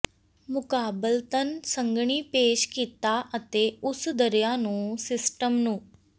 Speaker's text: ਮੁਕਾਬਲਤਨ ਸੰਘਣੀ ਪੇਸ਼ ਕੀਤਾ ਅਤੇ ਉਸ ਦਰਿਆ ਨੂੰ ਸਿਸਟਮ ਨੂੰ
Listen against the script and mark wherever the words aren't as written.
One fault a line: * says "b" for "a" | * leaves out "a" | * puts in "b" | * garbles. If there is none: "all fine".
all fine